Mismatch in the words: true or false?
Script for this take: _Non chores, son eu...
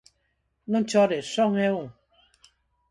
false